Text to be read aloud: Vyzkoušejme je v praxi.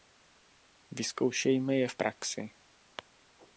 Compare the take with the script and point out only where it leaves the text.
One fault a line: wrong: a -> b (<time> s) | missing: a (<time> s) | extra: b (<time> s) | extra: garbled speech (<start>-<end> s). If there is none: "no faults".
no faults